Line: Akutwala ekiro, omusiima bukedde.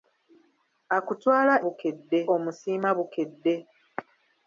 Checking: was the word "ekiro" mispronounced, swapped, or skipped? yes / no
yes